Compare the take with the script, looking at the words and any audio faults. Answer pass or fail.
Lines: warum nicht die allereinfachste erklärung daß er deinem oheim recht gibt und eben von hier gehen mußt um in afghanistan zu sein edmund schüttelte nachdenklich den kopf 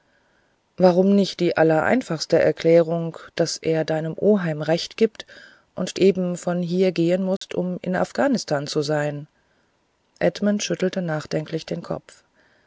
fail